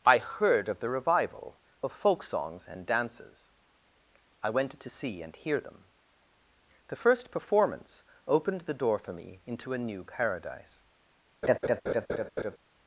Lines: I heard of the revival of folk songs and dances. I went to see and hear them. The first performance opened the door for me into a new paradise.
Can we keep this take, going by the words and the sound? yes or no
no